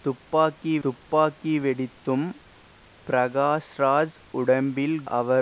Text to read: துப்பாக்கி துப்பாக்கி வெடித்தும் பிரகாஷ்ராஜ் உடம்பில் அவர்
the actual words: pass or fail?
pass